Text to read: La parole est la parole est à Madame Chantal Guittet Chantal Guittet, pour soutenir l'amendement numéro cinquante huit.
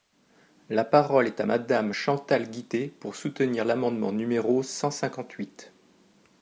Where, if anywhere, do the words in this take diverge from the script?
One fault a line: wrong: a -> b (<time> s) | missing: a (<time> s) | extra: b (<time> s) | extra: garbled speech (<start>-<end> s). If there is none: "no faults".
missing: la parole est (1.4 s)
missing: Chantal Guittet (2.9 s)
extra: cent (4.6 s)